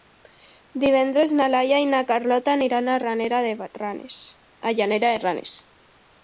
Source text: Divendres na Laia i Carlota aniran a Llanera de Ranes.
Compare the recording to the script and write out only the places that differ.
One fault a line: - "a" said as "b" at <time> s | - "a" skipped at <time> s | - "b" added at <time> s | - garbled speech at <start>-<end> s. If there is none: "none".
- "na" added at 1.9 s